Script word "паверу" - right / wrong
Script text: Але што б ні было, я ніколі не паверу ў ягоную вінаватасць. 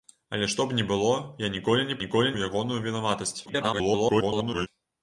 wrong